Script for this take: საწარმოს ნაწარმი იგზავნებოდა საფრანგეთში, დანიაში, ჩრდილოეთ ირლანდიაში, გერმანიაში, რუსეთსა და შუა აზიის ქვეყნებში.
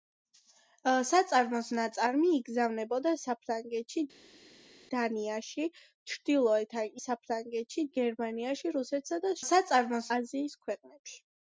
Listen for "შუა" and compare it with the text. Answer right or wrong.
wrong